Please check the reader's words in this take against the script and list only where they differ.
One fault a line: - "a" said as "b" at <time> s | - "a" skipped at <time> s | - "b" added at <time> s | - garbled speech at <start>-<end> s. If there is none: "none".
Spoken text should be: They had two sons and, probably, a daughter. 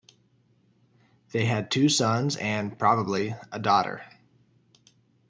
none